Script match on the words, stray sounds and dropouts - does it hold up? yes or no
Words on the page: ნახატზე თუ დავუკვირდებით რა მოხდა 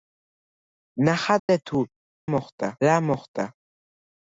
no